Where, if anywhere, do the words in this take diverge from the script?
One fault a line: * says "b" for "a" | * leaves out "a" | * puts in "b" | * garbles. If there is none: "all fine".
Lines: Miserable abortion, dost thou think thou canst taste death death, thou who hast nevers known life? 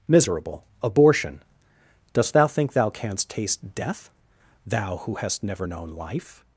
* leaves out "death"
* says "never" for "nevers"